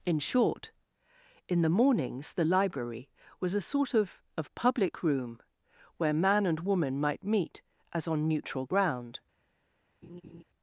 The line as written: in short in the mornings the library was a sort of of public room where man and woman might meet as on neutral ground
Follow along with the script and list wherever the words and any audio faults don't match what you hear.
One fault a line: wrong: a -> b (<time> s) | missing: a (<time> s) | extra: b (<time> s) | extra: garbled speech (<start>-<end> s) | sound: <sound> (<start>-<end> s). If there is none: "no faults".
sound: laugh (10.0-10.4 s)